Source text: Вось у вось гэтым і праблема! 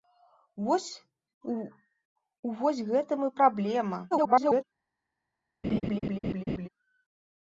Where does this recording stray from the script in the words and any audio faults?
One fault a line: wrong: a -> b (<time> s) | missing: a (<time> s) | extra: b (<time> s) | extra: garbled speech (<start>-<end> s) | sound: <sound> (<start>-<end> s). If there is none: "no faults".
extra: garbled speech (4.1-4.6 s)
sound: laugh (5.6-6.7 s)